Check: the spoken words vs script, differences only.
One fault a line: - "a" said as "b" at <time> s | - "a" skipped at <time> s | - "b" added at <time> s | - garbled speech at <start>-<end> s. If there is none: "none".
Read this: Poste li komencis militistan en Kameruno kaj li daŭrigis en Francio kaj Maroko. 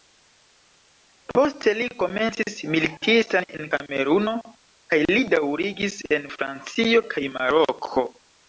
none